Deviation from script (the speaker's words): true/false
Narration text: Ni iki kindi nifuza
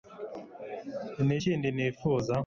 true